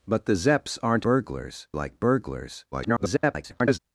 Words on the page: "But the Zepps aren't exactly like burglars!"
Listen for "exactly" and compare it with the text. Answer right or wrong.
wrong